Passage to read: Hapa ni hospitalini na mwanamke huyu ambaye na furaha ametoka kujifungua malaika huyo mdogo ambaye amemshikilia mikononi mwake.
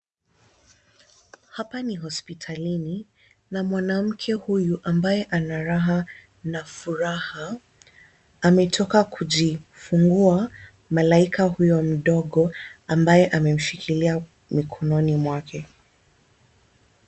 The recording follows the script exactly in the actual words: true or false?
false